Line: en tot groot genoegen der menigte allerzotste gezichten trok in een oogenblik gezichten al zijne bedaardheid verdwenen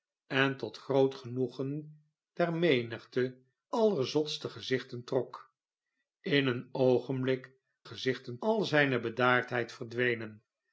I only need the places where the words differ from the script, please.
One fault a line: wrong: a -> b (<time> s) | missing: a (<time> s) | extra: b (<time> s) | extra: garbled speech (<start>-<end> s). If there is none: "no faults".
no faults